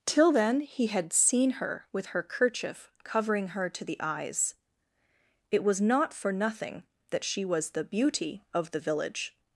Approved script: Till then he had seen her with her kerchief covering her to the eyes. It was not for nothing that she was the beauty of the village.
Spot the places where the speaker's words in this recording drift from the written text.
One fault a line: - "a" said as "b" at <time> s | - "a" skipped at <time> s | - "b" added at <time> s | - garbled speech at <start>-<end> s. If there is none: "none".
none